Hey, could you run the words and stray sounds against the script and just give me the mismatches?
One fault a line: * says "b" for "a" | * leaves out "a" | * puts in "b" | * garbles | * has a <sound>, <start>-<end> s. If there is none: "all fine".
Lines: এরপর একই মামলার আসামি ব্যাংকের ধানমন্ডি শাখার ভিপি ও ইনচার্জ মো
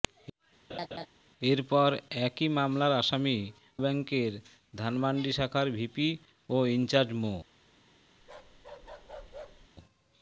* has a laugh, 0.7-1.1 s
* has a bark, 8.2-9.7 s